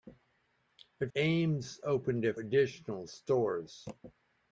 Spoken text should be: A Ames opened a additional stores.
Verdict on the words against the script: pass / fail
pass